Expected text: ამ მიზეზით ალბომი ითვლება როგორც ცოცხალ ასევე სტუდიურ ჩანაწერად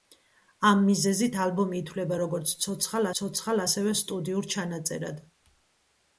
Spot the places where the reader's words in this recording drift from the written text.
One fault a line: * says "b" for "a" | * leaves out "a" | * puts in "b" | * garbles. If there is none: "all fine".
* puts in "ცოცხალ"